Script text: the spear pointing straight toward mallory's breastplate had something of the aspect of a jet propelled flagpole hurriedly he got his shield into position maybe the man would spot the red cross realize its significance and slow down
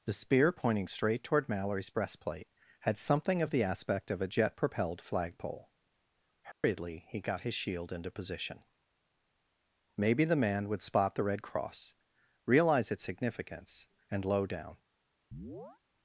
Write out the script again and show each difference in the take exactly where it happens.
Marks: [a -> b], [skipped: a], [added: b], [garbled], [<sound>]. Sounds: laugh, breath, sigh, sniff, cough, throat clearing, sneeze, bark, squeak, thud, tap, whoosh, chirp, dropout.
the spear pointing straight toward mallory's breastplate had something of the aspect of a jet propelled flagpole hurriedly [dropout] he got his shield into position maybe the man would spot the red cross realize its significance and [slow -> low] down [chirp]